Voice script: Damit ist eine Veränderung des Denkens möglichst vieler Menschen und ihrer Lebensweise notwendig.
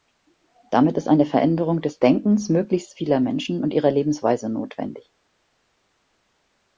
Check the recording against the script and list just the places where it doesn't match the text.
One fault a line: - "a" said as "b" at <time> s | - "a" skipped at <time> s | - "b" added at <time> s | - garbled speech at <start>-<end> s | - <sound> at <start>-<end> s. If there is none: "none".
none